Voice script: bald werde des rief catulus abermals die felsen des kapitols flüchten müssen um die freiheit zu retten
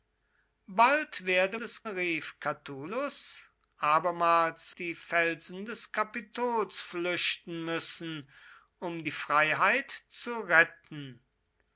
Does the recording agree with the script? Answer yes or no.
yes